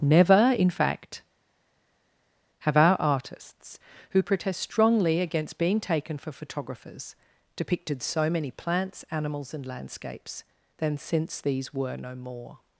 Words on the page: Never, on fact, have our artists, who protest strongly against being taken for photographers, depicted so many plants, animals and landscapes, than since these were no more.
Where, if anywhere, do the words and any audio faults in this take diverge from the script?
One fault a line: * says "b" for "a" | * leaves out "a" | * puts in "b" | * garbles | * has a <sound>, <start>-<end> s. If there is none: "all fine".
* says "in" for "on"